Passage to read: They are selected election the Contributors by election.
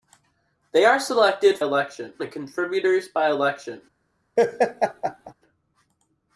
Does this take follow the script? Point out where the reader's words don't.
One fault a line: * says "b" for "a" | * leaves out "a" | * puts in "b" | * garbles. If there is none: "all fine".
all fine